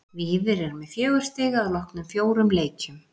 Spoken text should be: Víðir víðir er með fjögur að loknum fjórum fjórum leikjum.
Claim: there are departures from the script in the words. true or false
true